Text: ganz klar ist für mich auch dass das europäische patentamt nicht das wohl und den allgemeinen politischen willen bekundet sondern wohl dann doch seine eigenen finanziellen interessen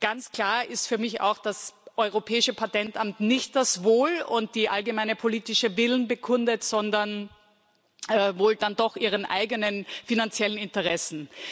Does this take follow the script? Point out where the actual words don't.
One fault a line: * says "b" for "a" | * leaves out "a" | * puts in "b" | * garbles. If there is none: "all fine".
all fine